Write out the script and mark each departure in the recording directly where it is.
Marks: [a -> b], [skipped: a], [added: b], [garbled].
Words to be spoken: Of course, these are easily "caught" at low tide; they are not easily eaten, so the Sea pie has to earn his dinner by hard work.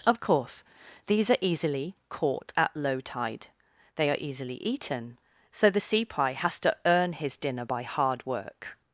Of course, these are easily "caught" at low tide; they are [skipped: not] easily eaten, so the Sea pie has to earn his dinner by hard work.